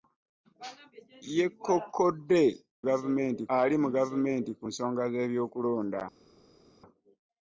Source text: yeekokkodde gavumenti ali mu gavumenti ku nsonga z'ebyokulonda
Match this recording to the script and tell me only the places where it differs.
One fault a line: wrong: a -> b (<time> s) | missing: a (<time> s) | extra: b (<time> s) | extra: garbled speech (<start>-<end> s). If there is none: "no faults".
no faults